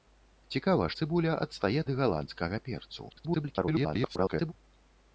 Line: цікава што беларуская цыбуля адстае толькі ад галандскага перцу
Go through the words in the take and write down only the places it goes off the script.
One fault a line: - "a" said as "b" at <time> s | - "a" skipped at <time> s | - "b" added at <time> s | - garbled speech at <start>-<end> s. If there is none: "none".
- "што беларуская" skipped at 0.9 s
- "толькі" skipped at 1.8 s
- garbled speech at 3.1-4.5 s